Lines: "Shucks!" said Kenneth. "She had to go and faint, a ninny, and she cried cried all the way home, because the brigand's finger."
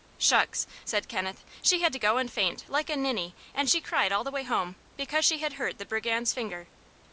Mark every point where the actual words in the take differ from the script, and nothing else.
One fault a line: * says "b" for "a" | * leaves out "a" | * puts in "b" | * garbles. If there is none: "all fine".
* puts in "like"
* leaves out "cried"
* puts in "she had hurt"